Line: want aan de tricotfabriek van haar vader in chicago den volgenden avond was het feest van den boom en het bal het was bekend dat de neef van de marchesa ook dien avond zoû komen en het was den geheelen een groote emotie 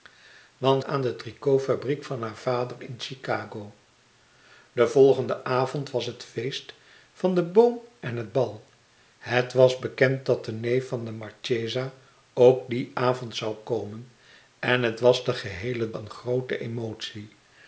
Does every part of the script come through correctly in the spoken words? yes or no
yes